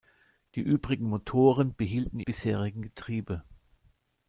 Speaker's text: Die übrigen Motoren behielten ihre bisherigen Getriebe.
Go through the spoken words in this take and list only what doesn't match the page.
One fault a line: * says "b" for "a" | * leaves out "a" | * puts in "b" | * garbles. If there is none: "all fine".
* leaves out "ihre"